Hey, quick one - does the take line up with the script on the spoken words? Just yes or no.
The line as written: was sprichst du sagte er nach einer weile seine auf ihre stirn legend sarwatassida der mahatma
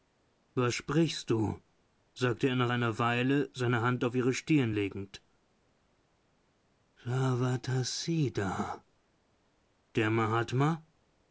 no